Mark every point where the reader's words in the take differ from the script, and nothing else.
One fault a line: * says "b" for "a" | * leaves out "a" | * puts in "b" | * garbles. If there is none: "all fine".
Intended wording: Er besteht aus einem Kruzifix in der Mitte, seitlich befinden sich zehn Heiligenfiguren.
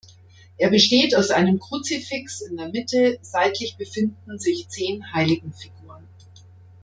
all fine